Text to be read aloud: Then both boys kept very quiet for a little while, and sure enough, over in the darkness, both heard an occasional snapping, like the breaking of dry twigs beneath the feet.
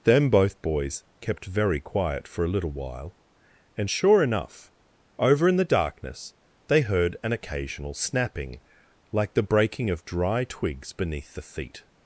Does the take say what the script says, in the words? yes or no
no